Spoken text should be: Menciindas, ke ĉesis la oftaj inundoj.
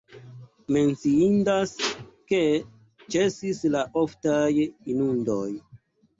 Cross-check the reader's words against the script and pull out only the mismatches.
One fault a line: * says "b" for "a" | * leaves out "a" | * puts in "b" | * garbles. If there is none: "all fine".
all fine